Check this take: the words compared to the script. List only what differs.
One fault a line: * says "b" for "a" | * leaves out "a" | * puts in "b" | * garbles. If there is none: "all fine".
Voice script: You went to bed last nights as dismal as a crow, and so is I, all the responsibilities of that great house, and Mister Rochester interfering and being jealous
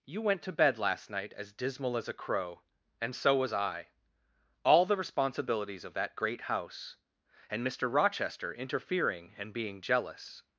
* says "night" for "nights"
* says "was" for "is"